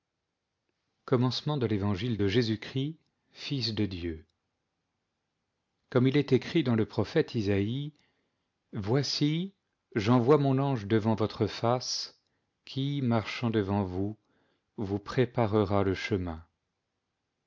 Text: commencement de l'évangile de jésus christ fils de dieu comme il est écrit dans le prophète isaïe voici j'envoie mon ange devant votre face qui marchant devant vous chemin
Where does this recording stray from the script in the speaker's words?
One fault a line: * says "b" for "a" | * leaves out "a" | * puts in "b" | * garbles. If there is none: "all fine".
* puts in "vous préparera le"